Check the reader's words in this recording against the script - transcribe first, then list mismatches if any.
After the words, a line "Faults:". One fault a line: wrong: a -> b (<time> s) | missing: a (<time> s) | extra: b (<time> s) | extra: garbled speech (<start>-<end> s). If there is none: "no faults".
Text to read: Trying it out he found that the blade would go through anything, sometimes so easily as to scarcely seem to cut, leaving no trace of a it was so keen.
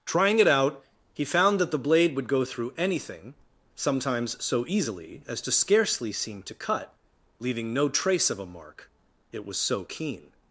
Trying it out he found that the blade would go through anything, sometimes so easily as to scarcely seem to cut, leaving no trace of a mark, it was so keen.
Faults:
extra: mark (8.5 s)